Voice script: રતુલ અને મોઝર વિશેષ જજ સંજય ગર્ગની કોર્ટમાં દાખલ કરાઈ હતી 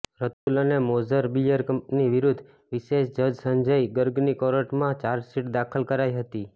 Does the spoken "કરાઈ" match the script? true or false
true